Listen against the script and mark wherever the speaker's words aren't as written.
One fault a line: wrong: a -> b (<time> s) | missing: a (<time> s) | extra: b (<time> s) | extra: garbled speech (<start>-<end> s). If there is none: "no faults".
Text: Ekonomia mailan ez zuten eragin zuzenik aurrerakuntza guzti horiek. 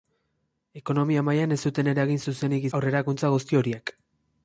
no faults